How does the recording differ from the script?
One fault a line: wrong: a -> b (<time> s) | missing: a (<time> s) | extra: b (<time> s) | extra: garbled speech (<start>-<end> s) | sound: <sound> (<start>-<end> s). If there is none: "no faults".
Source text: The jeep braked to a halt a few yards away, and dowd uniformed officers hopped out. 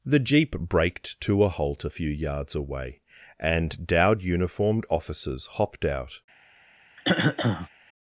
sound: throat clearing (7.0-7.7 s)